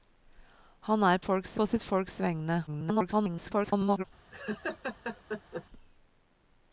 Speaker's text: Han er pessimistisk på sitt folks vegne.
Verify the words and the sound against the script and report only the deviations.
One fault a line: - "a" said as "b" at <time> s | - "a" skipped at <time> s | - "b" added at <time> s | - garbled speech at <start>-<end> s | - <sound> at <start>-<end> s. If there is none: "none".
- "pessimistisk" said as "folks" at 1.2 s
- garbled speech at 2.7-4.0 s
- laugh at 4.3-5.7 s